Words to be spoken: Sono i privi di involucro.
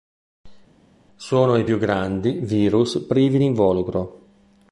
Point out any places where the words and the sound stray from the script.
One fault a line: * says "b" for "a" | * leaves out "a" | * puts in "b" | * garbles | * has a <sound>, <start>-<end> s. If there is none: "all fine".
* puts in "più grandi virus"